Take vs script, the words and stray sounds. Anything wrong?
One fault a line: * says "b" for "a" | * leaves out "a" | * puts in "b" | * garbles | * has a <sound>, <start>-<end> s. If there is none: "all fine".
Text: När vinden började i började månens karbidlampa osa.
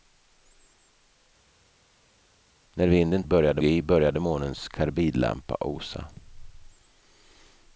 all fine